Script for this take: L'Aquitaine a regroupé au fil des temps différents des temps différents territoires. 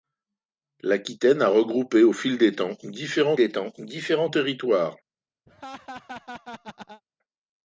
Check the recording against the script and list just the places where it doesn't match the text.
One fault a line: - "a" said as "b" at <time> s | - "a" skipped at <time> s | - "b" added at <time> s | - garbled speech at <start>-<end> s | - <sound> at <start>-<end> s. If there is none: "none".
- laugh at 5.5-7.0 s